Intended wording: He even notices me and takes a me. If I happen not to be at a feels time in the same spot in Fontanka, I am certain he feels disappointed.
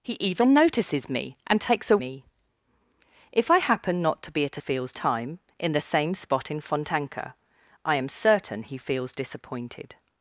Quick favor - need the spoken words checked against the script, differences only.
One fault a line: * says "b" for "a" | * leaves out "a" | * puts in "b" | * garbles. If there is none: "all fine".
all fine